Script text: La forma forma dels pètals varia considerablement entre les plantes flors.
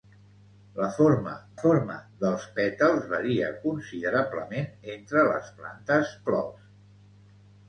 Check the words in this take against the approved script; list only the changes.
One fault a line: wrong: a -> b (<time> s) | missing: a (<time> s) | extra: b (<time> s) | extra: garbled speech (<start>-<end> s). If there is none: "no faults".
no faults